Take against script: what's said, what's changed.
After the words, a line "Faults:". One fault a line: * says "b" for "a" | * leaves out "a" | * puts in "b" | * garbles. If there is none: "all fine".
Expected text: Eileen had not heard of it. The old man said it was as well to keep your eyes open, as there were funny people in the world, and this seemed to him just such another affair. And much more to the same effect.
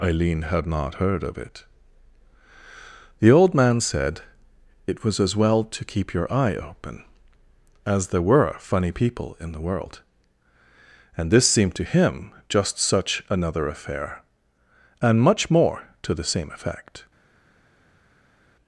Eileen had not heard of it. The old man said it was as well to keep your eye open, as there were funny people in the world, and this seemed to him just such another affair. And much more to the same effect.
Faults:
* says "eye" for "eyes"